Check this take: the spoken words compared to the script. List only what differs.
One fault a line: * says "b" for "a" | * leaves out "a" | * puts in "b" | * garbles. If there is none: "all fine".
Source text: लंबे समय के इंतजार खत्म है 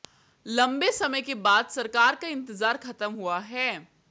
* puts in "बाद सरकार का"
* puts in "हुआ"